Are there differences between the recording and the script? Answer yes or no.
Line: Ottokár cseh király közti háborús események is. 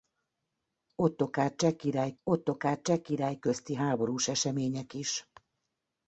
yes